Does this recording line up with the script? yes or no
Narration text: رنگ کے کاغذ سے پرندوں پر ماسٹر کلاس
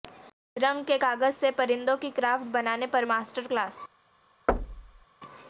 no